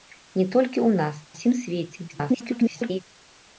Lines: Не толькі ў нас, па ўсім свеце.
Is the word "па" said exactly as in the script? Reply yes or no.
no